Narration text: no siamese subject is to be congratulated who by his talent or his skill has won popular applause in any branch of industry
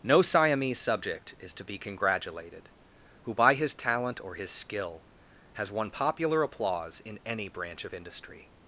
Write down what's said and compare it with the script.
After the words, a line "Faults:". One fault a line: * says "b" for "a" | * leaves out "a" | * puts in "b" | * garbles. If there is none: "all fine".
no siamese subject is to be congratulated who by his talent or his skill has won popular applause in any branch of industry
Faults:
all fine